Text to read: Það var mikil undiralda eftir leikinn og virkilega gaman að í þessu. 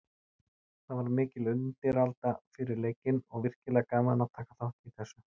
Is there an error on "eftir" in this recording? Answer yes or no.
yes